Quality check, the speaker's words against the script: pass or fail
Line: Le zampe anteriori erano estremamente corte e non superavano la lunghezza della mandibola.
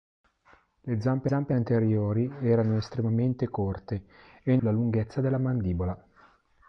fail